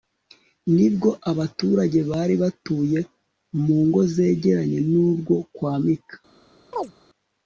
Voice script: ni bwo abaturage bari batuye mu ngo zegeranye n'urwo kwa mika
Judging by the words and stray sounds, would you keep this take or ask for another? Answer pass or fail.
fail